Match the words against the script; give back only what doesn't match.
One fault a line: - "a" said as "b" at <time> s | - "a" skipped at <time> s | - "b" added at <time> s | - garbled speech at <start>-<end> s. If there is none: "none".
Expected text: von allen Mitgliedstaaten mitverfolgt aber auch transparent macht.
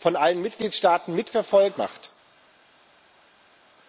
- "aber auch transparent" skipped at 1.8 s